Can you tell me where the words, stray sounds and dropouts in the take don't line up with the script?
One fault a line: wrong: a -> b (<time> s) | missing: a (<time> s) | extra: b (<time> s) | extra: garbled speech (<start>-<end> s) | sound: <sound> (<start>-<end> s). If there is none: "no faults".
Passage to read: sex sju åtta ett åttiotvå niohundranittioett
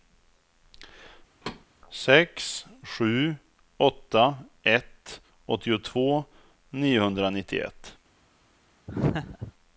sound: thud (1.4-1.7 s)
sound: laugh (8.9-9.5 s)